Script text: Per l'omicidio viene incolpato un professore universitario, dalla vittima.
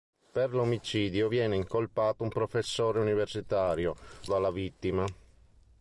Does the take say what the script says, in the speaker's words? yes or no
yes